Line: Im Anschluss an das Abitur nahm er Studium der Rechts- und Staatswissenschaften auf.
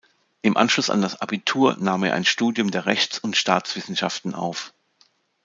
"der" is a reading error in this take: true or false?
false